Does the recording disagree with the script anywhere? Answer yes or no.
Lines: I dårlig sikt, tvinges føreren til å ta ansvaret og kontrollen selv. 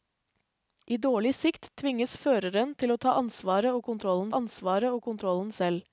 yes